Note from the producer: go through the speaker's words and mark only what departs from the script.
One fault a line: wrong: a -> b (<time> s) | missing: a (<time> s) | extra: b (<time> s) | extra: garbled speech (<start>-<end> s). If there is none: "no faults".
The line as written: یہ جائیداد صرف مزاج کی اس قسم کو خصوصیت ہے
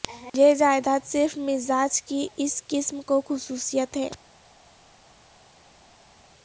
no faults